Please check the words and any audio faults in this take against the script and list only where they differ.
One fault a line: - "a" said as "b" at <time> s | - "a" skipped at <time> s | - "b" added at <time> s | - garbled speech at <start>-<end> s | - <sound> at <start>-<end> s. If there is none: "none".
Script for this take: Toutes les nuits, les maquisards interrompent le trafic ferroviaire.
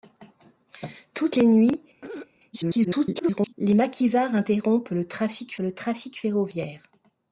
- throat clearing at 2.0-2.3 s
- garbled speech at 2.5-3.5 s
- "le trafic" added at 5.6 s